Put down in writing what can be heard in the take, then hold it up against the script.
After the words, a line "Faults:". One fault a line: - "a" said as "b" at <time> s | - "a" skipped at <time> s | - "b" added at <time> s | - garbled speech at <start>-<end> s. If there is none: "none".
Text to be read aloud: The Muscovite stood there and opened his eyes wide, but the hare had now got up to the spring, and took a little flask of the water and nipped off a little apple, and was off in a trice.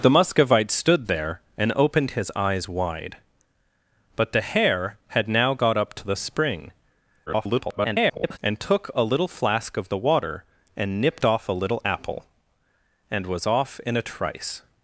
The Muscovite stood there and opened his eyes wide, but the hare had now got up to the spring, [garbled] and took a little flask of the water and nipped off a little apple, and was off in a trice.
Faults:
- garbled speech at 7.3-8.4 s